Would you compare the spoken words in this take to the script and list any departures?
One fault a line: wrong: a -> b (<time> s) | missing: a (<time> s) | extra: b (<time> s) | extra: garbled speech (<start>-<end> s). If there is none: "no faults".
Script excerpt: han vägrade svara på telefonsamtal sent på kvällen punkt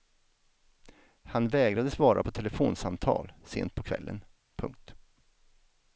no faults